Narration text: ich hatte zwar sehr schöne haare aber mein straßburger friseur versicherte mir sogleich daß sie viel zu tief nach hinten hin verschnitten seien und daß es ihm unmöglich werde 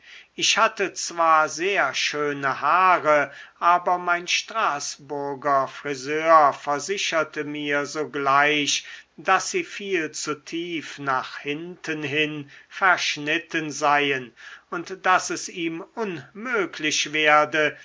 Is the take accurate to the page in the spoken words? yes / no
yes